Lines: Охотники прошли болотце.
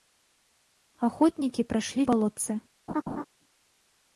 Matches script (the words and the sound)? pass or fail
fail